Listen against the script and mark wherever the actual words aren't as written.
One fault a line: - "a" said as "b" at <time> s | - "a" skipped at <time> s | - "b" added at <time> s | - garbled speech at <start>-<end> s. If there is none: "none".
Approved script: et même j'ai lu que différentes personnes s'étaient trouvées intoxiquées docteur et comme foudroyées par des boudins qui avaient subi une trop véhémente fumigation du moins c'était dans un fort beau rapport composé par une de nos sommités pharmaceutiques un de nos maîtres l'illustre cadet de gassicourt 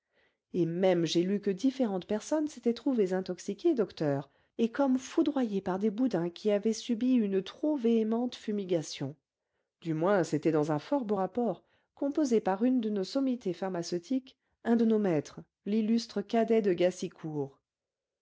none